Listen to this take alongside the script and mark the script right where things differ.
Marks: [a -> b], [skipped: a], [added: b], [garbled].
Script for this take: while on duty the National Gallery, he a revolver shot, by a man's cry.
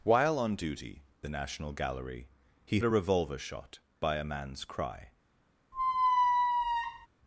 while on duty the National Gallery, he a revolver shot, by a man's cry.